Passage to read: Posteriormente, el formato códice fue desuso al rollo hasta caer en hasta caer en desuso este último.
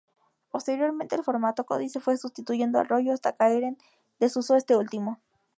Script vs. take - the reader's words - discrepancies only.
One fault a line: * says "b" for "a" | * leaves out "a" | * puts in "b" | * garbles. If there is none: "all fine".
* says "sustituyendo" for "desuso"
* leaves out "hasta caer en"